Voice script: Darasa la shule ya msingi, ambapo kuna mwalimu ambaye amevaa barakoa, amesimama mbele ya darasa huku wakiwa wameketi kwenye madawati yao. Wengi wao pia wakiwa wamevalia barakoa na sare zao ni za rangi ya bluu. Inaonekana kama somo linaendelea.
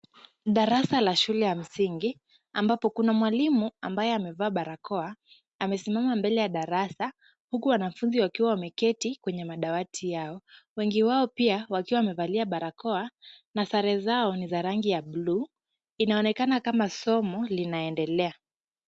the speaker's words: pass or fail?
fail